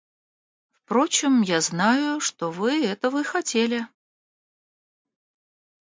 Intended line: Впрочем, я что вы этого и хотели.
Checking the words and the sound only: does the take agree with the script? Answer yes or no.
no